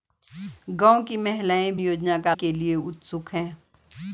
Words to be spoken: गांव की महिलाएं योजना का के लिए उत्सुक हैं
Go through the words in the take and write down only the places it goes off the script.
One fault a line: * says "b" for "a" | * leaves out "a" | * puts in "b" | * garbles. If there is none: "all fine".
all fine